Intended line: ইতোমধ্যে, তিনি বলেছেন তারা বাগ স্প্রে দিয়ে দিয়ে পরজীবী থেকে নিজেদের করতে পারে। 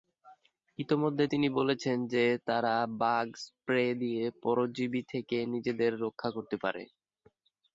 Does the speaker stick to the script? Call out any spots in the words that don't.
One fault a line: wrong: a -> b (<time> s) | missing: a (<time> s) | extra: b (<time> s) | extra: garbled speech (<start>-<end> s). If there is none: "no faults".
extra: যে (2.1 s)
missing: দিয়ে (4.2 s)
extra: রক্ষা (6.0 s)